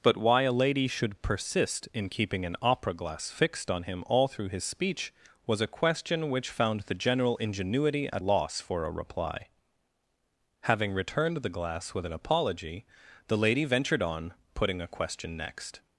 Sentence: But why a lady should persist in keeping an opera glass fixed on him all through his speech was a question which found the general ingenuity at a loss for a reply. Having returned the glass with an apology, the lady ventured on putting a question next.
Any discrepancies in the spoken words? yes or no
yes